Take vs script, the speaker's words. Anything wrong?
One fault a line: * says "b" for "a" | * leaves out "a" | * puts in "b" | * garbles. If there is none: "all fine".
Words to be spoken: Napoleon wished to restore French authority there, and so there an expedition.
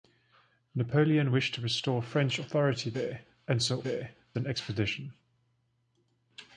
all fine